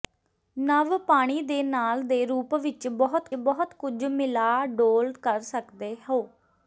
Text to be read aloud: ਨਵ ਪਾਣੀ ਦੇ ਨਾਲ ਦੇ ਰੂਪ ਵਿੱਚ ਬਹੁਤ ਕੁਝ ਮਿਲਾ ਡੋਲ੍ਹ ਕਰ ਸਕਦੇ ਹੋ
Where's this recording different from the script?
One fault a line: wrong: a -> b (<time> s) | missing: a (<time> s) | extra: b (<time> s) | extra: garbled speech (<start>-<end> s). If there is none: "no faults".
extra: ਬਹੁਤ (3.3 s)